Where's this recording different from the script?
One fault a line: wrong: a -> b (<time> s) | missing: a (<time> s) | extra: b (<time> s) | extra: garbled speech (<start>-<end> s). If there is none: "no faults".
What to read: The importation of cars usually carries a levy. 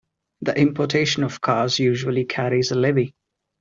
no faults